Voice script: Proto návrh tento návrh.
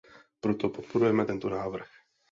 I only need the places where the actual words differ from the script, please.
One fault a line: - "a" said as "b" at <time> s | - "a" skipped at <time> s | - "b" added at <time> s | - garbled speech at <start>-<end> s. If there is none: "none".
- "návrh" said as "podporujeme" at 0.7 s